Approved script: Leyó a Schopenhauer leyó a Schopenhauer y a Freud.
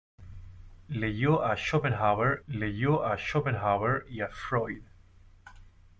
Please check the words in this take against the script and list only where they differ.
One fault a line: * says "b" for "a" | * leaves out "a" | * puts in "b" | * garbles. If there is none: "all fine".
all fine